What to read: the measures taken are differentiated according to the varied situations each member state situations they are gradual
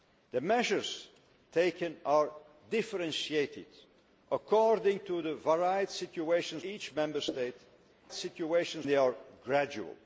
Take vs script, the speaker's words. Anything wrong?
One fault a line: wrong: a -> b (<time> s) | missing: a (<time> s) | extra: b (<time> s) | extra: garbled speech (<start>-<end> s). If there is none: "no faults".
no faults